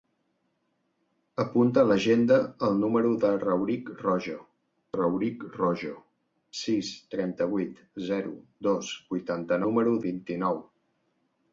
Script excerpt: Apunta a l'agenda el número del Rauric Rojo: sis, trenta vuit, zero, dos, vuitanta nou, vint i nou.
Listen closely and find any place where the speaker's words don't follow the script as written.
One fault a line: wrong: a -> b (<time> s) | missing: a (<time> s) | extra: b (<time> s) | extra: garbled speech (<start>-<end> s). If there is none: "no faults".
extra: Rauric Rojo (5.0 s)
wrong: nou -> número (9.7 s)